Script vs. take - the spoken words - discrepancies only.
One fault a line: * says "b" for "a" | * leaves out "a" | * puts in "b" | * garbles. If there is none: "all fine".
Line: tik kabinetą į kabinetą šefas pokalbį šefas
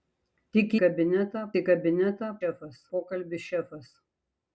all fine